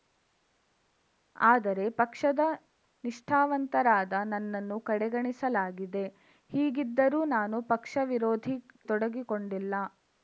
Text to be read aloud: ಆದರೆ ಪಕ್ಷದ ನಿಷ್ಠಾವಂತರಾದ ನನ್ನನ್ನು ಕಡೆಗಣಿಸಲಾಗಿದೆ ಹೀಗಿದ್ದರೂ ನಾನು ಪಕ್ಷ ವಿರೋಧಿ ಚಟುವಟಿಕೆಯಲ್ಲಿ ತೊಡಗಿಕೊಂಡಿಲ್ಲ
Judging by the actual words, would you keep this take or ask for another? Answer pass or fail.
fail